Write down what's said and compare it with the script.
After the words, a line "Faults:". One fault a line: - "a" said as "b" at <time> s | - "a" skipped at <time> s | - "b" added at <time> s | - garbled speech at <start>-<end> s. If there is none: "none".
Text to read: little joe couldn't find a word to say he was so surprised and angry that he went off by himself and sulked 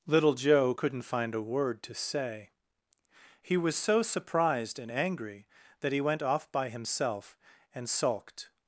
little joe couldn't find a word to say he was so surprised and angry that he went off by himself and sulked
Faults:
none